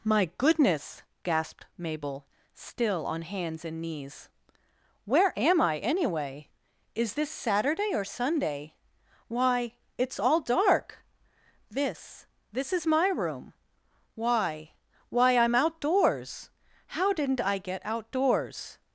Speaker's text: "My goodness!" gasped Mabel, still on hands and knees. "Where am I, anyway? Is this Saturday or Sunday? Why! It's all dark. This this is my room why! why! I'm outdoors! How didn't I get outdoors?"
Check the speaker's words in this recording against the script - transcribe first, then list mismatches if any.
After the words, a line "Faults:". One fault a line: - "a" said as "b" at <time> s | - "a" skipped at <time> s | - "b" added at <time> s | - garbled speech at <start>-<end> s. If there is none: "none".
"My goodness!" gasped Mabel, still on hands and knees. "Where am I, anyway? Is this Saturday or Sunday? Why! It's all dark. This this is my room why! why! I'm outdoors! How didn't I get outdoors?"
Faults:
none